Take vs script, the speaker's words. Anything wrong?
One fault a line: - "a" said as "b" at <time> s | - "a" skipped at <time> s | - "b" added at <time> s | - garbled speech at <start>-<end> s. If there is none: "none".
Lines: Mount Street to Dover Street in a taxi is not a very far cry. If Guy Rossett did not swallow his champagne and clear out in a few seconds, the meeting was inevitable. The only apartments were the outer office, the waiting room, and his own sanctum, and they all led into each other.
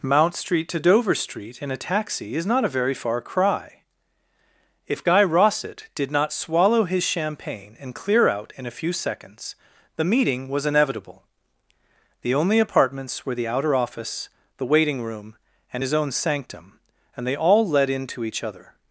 none